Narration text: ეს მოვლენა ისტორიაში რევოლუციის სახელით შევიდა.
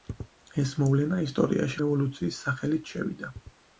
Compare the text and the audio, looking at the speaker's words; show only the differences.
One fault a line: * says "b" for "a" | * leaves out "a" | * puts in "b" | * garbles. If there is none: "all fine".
all fine